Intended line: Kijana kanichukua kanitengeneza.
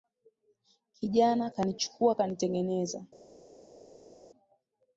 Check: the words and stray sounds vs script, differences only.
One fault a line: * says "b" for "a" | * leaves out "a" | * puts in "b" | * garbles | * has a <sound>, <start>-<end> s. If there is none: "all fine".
all fine